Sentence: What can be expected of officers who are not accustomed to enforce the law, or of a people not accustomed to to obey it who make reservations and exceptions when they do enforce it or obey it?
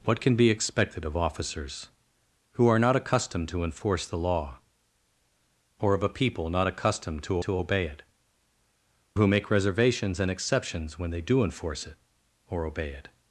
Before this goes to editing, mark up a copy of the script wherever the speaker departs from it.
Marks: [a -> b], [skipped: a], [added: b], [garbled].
What can be expected of officers who are not accustomed to enforce the law, or of a people not accustomed to to obey it who make reservations and exceptions when they do enforce it or obey it?